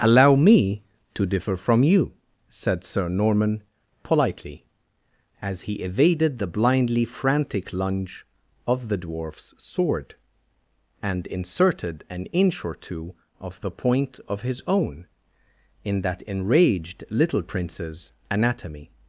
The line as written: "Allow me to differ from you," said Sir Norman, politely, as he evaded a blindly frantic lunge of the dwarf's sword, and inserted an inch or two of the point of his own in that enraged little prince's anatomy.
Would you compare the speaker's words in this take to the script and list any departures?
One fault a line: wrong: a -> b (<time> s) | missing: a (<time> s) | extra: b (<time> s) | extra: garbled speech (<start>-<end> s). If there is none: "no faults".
wrong: a -> the (6.4 s)